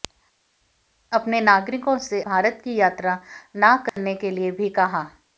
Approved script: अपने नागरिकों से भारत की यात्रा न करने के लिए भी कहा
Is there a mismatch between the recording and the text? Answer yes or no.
no